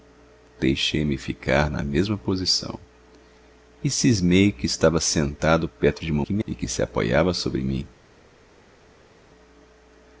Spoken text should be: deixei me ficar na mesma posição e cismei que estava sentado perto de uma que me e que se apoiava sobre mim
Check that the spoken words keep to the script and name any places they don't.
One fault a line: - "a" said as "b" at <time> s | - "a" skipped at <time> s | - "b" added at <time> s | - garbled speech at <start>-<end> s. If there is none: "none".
none